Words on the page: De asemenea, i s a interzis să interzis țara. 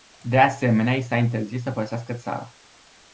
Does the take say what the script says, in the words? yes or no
no